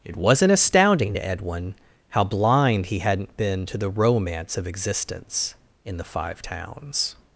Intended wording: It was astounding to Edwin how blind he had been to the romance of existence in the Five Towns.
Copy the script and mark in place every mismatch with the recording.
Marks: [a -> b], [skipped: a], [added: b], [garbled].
It [was -> wasn't] astounding to Edwin how blind he [had -> hadn't] been to the romance of existence in the Five Towns.